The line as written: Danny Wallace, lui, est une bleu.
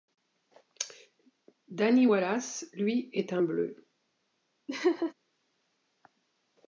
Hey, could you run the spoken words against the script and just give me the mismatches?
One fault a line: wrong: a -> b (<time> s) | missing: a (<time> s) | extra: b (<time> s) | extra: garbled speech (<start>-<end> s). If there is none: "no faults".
wrong: une -> un (3.3 s)